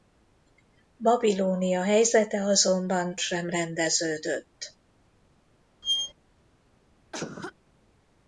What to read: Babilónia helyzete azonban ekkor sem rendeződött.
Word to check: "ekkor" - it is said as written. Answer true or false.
false